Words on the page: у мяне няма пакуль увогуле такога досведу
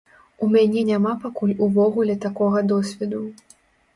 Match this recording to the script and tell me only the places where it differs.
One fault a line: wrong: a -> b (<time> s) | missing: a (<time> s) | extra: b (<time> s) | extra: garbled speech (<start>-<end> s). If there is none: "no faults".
no faults